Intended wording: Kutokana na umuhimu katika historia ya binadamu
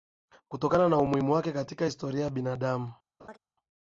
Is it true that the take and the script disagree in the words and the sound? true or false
true